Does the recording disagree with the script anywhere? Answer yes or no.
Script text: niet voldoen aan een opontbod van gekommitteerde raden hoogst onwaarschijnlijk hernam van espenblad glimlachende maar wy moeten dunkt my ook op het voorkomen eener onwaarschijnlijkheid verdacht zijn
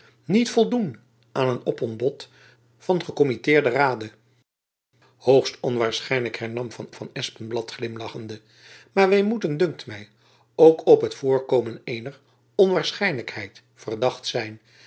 yes